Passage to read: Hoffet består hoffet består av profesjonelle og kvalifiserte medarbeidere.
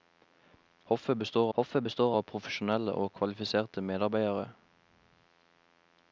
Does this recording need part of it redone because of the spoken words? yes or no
no